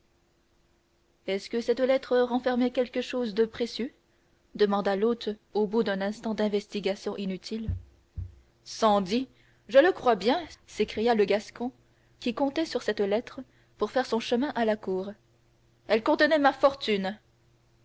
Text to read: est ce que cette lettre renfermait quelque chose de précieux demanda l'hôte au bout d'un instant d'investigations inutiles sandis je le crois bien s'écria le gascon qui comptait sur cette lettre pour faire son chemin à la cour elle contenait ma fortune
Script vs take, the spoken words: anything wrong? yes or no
no